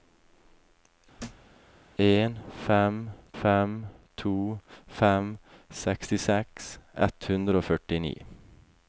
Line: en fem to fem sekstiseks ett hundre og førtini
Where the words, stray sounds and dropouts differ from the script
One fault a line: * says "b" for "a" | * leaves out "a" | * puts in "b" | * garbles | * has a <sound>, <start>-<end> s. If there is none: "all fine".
* has a thud, 1.2-1.5 s
* puts in "fem"